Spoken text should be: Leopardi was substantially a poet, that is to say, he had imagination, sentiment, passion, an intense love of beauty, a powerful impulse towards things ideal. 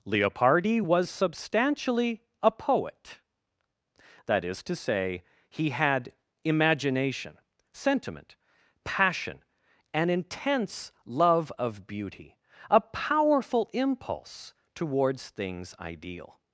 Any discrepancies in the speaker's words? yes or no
no